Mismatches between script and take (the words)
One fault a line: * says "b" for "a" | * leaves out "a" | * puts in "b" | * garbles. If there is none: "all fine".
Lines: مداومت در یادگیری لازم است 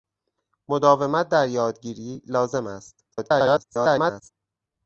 * garbles